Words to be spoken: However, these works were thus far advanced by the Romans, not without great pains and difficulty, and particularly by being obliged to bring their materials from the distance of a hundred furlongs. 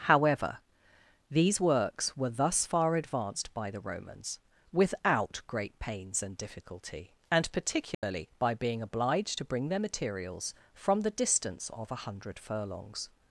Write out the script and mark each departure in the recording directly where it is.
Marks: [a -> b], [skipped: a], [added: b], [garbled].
However, these works were thus far advanced by the Romans, [skipped: not] without great pains and difficulty, and particularly by being obliged to bring their materials from the distance of a hundred furlongs.